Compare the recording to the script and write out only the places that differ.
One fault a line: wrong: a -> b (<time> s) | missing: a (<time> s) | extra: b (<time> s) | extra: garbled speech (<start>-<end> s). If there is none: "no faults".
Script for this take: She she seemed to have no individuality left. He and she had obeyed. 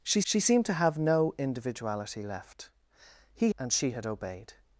no faults